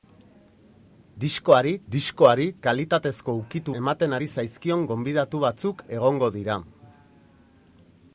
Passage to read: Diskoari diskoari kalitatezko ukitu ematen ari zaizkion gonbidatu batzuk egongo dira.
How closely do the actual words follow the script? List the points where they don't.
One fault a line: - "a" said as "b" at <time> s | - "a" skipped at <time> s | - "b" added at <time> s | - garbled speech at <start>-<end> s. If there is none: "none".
none